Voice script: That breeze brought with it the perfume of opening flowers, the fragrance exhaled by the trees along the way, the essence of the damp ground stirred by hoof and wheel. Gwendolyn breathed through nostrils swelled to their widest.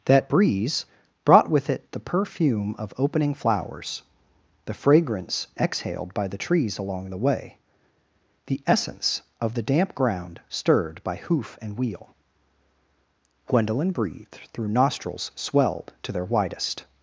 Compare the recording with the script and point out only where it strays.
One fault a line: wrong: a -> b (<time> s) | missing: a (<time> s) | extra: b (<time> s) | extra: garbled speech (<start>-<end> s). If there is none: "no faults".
no faults